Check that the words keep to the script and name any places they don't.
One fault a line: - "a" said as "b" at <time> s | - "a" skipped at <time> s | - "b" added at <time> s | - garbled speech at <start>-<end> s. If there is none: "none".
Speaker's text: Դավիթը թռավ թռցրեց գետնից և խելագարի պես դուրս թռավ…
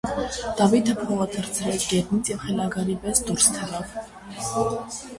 - "թռավ" said as "փողը" at 1.0 s